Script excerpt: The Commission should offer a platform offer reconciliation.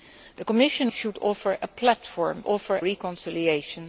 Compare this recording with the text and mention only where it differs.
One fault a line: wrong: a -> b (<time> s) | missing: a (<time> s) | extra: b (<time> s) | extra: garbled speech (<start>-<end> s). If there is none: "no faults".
no faults